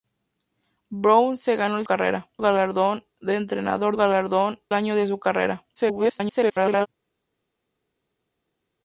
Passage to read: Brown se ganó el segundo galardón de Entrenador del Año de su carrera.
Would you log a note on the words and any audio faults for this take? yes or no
yes